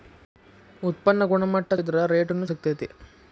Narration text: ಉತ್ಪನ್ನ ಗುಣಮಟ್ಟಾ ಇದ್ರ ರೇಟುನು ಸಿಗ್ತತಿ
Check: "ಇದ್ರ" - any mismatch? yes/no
no